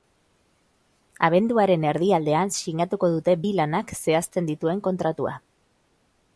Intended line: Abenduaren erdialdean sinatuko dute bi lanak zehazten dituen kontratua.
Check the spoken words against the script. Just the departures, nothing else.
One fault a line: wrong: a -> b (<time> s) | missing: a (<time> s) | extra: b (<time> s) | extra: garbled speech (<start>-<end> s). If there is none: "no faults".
no faults